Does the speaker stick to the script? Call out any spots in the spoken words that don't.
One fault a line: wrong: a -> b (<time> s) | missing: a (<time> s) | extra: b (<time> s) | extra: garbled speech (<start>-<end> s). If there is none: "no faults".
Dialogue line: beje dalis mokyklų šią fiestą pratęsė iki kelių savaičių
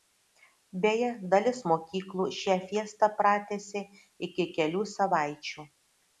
no faults